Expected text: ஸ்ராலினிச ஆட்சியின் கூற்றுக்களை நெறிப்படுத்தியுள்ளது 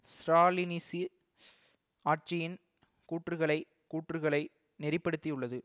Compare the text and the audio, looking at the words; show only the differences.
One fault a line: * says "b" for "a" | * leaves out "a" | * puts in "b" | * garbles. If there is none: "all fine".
* puts in "கூற்றுக்களை"